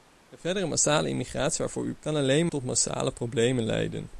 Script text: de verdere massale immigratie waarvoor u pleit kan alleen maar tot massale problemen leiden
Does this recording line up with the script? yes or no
no